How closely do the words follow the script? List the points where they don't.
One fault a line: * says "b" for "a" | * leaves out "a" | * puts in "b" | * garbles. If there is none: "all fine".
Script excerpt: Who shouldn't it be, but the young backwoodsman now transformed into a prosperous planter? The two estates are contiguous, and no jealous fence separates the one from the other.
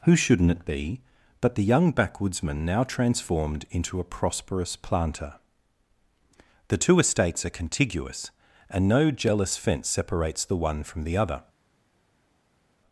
all fine